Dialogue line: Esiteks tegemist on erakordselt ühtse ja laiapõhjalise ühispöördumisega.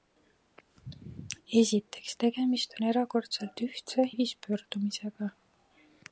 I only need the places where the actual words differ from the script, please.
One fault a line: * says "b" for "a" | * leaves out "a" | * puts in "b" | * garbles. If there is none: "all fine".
* leaves out "ja laiapõhjalise"